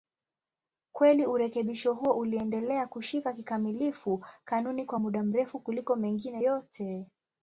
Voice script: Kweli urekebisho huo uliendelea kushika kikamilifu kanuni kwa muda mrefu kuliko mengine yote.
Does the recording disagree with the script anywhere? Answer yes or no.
no